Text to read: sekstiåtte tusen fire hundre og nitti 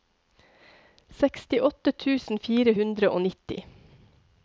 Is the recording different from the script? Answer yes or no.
no